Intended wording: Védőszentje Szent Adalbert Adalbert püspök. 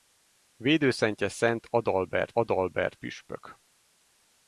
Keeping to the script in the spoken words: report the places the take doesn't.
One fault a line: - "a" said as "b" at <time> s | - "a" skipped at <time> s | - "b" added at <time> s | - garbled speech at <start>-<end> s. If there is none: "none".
none